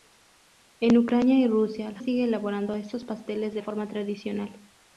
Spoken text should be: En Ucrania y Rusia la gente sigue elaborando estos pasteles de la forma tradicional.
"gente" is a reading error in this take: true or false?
true